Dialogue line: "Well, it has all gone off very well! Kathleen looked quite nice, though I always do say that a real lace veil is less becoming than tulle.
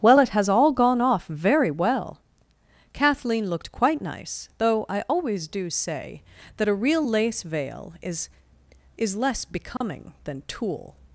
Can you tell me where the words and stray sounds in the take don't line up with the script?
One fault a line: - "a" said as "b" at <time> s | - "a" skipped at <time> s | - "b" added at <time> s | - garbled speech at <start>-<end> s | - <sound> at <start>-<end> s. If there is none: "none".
- "is" added at 9.0 s
- dropout at 9.8-9.8 s